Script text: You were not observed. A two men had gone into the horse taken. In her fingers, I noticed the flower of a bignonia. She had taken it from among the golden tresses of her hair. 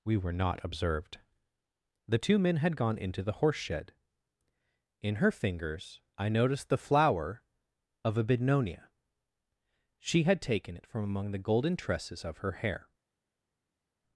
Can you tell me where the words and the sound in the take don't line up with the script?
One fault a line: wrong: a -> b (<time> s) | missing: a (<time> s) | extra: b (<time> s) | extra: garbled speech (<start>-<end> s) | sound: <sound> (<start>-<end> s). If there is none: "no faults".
wrong: You -> We (0.0 s)
wrong: A -> The (2.1 s)
wrong: taken -> shed (3.6 s)